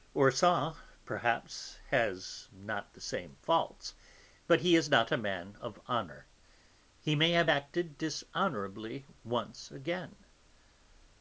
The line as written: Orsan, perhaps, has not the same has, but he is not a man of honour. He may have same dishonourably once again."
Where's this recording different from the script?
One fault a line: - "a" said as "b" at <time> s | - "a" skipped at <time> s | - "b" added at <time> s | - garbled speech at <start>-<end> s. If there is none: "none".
- "has" said as "faults" at 3.4 s
- "same" said as "acted" at 7.5 s